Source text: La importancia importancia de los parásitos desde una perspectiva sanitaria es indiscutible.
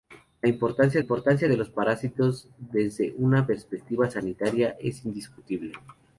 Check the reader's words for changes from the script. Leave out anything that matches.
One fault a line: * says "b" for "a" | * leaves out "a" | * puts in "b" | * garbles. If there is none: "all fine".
all fine